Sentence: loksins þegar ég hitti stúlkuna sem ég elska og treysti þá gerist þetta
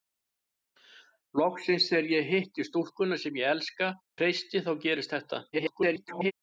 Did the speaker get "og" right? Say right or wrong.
wrong